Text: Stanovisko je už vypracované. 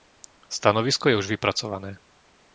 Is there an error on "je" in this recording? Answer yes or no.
no